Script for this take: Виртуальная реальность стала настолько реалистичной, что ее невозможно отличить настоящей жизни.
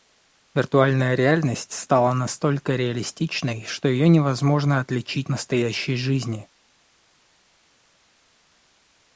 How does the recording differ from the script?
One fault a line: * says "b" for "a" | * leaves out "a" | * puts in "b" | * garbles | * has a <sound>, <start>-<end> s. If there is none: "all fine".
all fine